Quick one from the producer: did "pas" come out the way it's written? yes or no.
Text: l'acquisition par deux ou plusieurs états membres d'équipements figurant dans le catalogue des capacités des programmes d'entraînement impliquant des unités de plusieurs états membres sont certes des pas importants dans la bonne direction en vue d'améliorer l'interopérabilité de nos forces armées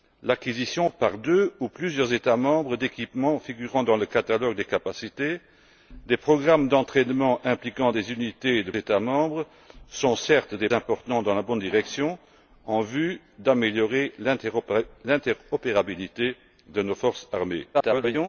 no